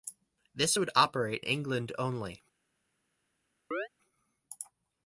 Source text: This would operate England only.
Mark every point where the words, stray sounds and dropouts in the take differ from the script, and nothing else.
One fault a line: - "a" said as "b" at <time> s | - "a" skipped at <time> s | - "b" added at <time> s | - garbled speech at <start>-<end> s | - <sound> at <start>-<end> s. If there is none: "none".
- chirp at 3.7-3.9 s